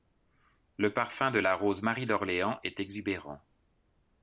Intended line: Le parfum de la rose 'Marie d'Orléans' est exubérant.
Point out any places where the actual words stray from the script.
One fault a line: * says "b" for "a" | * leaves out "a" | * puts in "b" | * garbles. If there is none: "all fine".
all fine